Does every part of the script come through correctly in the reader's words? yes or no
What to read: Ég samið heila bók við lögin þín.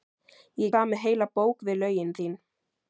yes